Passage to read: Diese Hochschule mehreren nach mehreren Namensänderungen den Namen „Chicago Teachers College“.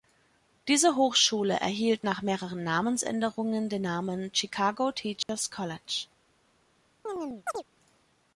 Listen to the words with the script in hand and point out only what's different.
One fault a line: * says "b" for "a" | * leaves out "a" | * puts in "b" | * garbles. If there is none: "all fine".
* says "erhielt" for "mehreren"